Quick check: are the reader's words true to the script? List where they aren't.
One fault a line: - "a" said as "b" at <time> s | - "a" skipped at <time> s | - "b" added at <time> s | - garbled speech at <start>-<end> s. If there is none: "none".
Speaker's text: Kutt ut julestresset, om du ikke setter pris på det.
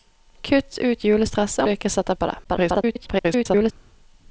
- "om" skipped at 1.6 s
- "pris" skipped at 2.1 s
- garbled speech at 2.4-3.7 s